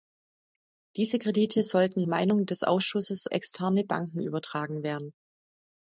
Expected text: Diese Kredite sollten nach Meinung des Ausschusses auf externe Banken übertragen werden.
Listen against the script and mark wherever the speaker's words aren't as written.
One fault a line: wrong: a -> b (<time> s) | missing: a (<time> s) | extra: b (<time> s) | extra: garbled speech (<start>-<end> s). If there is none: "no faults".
missing: nach (2.0 s)
missing: auf (3.3 s)